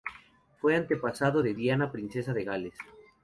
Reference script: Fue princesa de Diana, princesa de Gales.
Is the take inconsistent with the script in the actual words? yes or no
yes